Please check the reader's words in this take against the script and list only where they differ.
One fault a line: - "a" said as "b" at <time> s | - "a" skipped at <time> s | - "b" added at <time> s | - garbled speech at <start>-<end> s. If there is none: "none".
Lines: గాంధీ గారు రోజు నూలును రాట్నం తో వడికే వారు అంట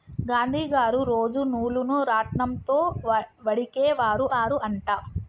- "వారు" added at 4.3 s